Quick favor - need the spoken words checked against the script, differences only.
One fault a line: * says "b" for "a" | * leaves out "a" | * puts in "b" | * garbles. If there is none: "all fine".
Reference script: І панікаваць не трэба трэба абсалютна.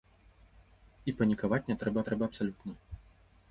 all fine